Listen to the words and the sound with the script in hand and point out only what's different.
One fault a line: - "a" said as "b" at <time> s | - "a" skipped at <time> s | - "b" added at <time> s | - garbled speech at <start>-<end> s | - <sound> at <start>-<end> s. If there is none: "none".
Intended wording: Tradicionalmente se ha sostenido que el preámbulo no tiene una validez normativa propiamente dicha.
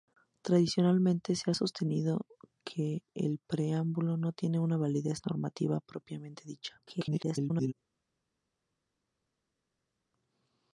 - garbled speech at 6.9-7.7 s